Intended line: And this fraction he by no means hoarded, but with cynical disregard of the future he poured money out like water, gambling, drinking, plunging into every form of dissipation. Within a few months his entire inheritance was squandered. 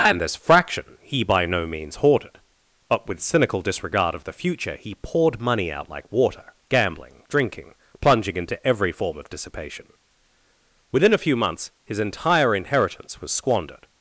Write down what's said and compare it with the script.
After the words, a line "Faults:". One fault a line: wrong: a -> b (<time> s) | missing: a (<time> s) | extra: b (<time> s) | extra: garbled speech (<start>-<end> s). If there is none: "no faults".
And this fraction he by no means hoarded, but with cynical disregard of the future he poured money out like water, gambling, drinking, plunging into every form of dissipation. Within a few months his entire inheritance was squandered.
Faults:
no faults